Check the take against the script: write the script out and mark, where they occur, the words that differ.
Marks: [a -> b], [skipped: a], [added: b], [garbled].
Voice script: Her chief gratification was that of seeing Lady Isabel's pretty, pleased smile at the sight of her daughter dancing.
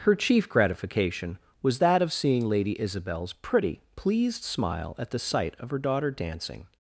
Her chief gratification was that of seeing Lady Isabel's pretty, pleased smile at the sight of her daughter dancing.